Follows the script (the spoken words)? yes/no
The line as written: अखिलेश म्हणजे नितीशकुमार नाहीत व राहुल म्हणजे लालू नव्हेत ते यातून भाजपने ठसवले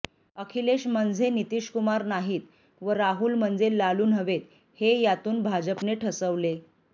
no